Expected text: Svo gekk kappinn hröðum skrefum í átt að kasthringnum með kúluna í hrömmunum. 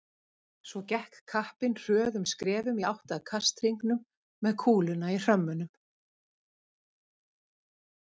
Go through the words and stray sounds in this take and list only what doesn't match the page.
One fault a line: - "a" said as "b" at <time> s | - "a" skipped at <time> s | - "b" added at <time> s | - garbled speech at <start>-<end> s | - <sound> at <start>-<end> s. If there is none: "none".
none